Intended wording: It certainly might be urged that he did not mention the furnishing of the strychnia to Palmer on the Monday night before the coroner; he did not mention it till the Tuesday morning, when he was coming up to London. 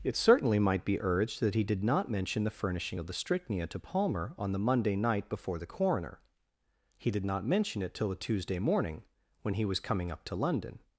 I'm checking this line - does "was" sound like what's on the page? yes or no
yes